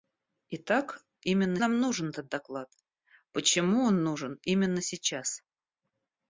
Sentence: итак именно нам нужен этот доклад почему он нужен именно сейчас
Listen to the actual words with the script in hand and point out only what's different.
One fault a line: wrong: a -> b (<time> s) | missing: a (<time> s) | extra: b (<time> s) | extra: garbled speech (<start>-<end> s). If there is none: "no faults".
no faults